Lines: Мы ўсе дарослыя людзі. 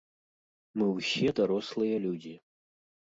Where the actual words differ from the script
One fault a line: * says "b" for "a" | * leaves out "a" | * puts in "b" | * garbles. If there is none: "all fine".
all fine